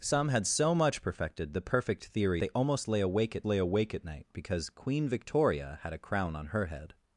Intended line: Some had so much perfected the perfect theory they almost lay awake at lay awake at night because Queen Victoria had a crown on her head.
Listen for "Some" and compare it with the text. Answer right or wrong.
right